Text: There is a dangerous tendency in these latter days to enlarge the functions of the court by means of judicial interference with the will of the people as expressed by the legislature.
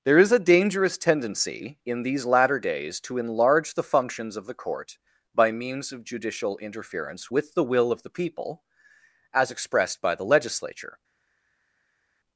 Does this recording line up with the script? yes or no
yes